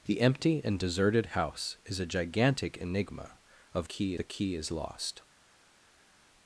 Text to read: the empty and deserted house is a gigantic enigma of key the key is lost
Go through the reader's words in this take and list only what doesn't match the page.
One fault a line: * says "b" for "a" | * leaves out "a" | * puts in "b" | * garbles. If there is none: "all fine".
all fine